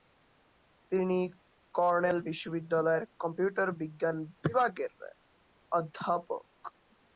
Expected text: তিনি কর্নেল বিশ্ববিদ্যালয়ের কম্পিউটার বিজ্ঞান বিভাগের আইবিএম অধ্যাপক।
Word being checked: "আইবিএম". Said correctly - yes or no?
no